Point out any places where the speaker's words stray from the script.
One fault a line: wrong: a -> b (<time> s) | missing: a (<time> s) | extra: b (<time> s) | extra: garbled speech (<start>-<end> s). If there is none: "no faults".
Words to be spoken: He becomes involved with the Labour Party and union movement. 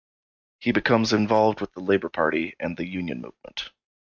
extra: the (2.8 s)